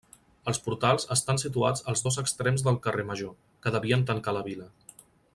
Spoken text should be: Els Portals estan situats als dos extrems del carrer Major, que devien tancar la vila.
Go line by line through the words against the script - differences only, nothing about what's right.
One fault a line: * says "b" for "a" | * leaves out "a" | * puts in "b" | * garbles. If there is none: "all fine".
all fine